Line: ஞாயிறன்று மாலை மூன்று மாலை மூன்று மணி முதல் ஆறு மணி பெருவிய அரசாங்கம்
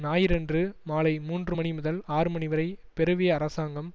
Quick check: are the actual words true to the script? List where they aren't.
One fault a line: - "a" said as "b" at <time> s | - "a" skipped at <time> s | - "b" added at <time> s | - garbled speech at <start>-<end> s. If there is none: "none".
- "மாலை மூன்று" skipped at 1.5 s
- "வரை" added at 2.5 s